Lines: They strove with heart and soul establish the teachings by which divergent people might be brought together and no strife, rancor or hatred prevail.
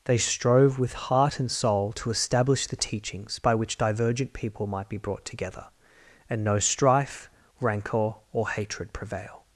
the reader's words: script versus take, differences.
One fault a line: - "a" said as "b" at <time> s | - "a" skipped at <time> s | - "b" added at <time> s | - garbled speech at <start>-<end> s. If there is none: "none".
- "to" added at 1.9 s